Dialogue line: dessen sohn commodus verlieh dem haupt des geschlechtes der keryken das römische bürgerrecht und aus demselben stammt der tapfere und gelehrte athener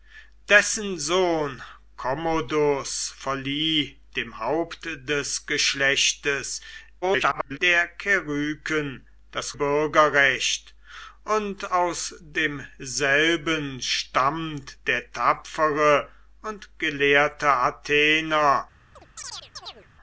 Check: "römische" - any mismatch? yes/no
yes